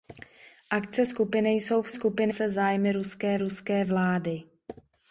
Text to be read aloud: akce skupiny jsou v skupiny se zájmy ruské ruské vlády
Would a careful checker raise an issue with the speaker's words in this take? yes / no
no